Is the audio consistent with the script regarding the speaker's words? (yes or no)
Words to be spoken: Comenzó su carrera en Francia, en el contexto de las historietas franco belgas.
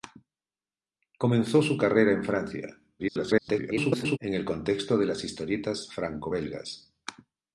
no